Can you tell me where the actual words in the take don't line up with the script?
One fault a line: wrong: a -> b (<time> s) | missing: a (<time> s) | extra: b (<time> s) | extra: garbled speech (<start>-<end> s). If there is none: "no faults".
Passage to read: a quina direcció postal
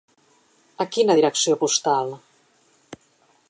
no faults